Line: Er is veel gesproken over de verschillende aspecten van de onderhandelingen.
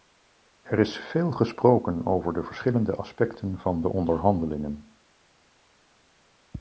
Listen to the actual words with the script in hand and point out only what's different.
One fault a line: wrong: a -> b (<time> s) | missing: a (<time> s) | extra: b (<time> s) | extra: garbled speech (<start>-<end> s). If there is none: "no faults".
no faults